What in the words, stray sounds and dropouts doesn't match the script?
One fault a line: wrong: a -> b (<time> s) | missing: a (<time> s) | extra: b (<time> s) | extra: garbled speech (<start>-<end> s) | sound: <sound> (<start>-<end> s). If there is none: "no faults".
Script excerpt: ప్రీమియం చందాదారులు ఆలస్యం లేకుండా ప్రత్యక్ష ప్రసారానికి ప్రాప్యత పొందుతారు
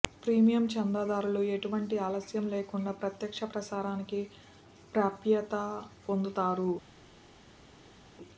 extra: ఎటువంటి (1.6 s)